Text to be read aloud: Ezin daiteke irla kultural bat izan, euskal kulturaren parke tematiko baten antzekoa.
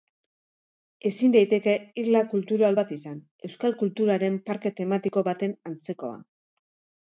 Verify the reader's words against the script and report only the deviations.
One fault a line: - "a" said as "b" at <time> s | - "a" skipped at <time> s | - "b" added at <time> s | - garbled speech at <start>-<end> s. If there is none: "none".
none